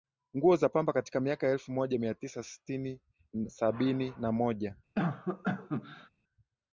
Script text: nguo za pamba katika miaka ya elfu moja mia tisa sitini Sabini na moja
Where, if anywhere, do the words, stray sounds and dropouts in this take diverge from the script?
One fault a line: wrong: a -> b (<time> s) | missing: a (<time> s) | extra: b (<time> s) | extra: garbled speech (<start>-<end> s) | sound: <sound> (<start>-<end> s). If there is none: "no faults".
sound: cough (4.9-6.1 s)